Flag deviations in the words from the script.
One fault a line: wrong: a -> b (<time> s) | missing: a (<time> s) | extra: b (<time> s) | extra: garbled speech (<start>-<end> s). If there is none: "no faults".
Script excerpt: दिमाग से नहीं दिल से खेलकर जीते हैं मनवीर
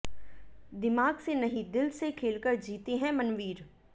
no faults